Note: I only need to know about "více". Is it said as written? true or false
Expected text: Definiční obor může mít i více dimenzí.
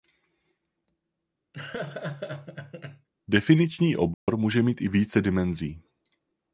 true